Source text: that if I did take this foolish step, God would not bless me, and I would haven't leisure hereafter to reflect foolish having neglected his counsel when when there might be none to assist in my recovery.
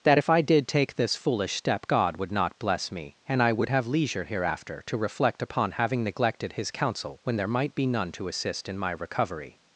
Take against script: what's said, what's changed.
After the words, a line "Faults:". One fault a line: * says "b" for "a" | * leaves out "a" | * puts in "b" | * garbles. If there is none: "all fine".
that if I did take this foolish step, God would not bless me, and I would have leisure hereafter to reflect upon having neglected his counsel when there might be none to assist in my recovery.
Faults:
* says "have" for "haven't"
* says "upon" for "foolish"
* leaves out "when"